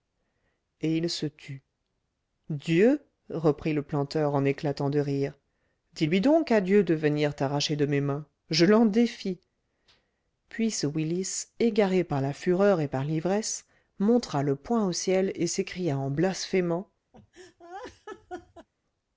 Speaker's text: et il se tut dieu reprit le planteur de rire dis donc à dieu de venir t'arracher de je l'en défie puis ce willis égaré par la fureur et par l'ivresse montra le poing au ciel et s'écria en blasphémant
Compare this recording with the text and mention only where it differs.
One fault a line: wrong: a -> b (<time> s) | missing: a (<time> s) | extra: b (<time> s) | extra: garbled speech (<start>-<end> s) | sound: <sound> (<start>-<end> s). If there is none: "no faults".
extra: en éclatant (4.3 s)
extra: lui (6.0 s)
extra: mes mains (7.8 s)
sound: laugh (17.1-18.7 s)